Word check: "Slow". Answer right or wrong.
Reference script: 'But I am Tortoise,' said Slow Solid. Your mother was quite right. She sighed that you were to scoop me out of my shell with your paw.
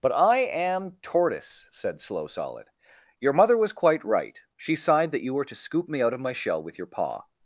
right